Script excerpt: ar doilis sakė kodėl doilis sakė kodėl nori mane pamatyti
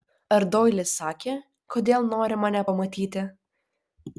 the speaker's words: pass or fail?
fail